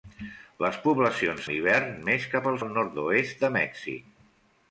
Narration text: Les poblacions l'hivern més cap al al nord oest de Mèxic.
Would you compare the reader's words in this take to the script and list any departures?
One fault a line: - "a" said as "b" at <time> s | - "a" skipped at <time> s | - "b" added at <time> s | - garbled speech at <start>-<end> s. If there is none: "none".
none